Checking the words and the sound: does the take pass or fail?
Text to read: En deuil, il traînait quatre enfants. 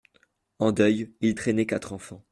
pass